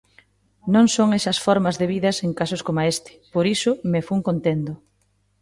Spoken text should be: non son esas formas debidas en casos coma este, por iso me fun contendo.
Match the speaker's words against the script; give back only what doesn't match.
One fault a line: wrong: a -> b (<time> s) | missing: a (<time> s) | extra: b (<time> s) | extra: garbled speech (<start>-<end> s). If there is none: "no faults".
no faults